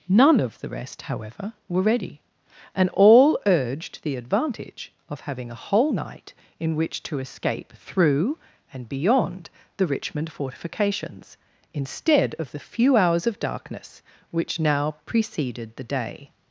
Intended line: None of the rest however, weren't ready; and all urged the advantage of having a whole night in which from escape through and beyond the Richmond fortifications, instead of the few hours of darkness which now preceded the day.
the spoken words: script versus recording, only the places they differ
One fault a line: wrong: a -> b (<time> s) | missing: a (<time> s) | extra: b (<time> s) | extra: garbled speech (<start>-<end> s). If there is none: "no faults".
wrong: weren't -> were (1.7 s)
wrong: from -> to (7.0 s)